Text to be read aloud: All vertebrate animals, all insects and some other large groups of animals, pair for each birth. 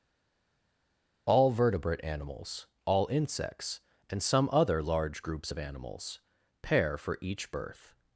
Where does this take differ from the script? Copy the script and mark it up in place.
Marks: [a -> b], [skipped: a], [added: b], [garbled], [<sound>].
All vertebrate animals, all insects and some other large groups of animals, pair for each birth.